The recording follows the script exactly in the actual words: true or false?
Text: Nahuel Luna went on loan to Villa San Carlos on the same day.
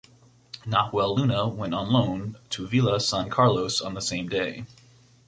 true